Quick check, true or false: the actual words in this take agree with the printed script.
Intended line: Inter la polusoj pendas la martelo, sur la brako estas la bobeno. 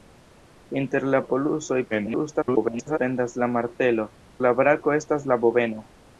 false